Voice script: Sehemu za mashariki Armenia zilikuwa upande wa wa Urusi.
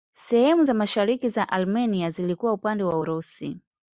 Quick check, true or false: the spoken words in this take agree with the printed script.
false